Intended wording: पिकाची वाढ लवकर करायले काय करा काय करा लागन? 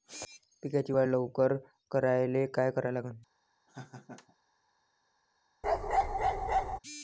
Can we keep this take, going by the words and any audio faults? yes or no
no